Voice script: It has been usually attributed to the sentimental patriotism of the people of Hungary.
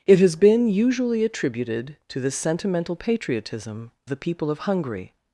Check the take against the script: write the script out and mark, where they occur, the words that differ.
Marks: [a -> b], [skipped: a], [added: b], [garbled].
It has been usually attributed to the sentimental patriotism [skipped: of] the people of Hungary.